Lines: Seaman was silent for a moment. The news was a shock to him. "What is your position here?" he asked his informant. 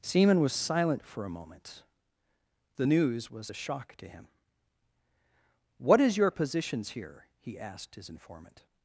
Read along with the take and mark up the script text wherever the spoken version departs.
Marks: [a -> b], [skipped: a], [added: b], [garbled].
Seaman was silent for a moment. The news was a shock to him. "What is your [position -> positions] here?" he asked his informant.